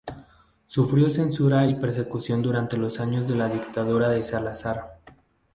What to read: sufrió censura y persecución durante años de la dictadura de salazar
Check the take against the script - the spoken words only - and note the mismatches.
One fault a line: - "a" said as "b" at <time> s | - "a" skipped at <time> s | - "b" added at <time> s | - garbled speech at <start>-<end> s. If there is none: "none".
- "los" added at 2.8 s